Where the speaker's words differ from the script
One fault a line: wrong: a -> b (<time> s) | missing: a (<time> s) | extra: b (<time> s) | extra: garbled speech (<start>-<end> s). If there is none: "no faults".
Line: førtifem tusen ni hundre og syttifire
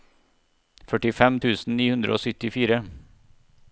no faults